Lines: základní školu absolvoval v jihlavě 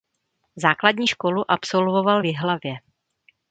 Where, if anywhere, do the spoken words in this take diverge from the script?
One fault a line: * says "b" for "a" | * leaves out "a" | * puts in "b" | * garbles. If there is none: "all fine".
all fine